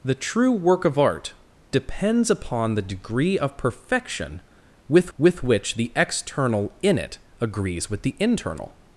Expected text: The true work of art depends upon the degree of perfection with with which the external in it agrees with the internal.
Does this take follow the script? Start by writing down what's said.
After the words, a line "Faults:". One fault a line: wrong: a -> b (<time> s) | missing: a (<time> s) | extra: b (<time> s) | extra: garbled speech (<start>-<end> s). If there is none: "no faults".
The true work of art depends upon the degree of perfection with with which the external in it agrees with the internal.
Faults:
no faults